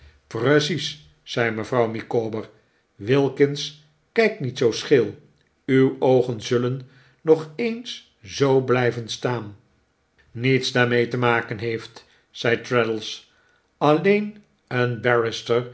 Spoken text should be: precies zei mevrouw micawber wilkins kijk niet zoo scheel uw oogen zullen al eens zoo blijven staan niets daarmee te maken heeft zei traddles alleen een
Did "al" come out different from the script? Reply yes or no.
yes